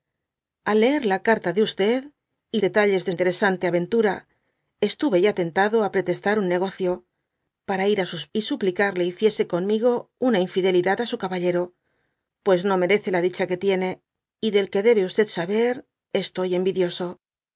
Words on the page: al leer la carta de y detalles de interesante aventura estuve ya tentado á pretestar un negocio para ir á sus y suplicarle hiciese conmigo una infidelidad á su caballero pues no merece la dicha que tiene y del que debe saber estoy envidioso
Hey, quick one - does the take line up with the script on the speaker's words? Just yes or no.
yes